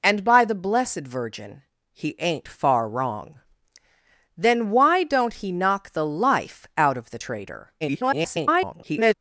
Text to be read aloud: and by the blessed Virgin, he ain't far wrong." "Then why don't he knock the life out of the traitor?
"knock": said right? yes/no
yes